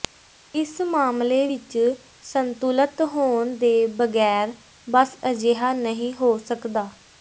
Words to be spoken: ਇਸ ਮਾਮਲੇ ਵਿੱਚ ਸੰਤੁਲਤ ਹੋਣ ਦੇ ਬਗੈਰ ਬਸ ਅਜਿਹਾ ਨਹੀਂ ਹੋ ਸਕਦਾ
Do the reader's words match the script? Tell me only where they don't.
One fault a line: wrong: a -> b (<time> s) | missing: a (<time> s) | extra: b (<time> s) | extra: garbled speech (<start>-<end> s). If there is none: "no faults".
no faults